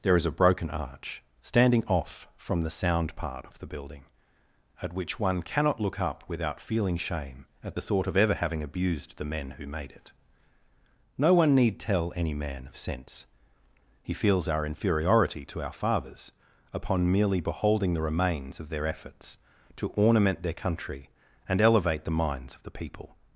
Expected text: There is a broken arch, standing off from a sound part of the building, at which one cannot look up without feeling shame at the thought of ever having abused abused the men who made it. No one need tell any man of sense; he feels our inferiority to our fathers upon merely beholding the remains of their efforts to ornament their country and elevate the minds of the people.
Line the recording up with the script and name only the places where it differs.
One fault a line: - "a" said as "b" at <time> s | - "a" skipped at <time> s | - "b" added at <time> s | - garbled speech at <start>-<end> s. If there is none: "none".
- "a" said as "the" at 2.6 s
- "abused" skipped at 9.2 s